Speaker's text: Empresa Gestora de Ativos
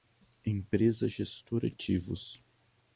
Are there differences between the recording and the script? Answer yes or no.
yes